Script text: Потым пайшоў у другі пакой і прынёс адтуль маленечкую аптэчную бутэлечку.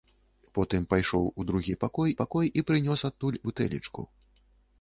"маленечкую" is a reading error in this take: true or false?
true